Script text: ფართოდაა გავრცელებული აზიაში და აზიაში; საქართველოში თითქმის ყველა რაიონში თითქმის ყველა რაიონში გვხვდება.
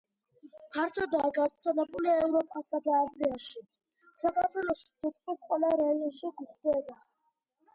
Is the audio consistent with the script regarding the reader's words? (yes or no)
no